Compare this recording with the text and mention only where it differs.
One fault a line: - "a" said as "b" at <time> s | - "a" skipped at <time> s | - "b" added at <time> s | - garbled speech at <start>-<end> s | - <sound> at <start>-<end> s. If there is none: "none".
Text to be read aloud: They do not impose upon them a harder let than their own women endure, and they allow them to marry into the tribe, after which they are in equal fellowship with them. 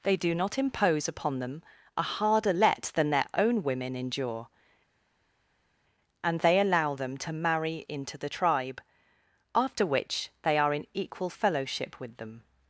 none